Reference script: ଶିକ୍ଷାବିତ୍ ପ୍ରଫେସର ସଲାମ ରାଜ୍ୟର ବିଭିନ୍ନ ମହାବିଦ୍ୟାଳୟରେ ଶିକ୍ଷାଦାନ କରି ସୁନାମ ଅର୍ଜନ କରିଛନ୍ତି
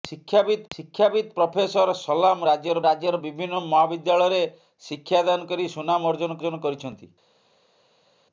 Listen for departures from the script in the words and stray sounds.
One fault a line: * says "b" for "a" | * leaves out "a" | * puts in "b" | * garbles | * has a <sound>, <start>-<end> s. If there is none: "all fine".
* puts in "ଶିକ୍ଷାବିତ୍"
* puts in "ରାଜ୍ୟର"
* puts in "ଅର୍ଜନ"